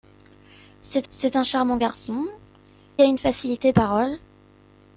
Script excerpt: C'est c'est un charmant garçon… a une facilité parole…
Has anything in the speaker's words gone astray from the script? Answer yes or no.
no